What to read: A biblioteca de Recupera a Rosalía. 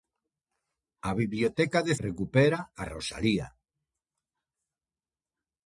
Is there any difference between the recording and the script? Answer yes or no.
no